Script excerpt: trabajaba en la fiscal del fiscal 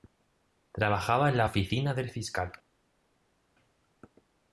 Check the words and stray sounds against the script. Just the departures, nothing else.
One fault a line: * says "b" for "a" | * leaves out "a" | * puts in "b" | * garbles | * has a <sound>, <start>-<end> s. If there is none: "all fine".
* says "oficina" for "fiscal"